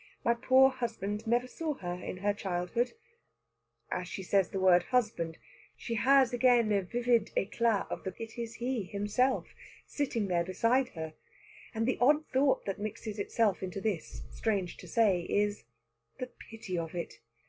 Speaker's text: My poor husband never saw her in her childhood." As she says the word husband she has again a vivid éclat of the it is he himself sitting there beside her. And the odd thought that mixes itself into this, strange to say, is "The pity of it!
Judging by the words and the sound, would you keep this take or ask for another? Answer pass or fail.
pass